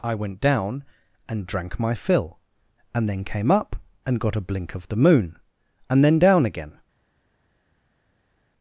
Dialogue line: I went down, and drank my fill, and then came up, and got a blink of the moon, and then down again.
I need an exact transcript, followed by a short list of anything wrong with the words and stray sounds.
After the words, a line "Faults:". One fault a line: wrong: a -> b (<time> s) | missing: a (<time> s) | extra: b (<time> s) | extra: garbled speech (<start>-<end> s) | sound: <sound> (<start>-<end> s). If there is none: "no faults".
I went down, and drank my fill, and then came up, and got a blink of the moon, and then down again.
Faults:
no faults